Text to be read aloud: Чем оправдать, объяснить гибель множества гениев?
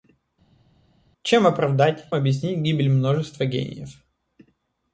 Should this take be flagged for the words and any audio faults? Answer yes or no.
no